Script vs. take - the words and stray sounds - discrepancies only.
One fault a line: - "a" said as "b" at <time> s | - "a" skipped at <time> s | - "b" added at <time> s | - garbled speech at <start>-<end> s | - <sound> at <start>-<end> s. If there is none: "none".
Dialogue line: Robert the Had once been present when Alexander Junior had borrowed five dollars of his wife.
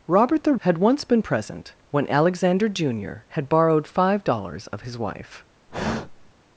- sigh at 5.7-6.3 s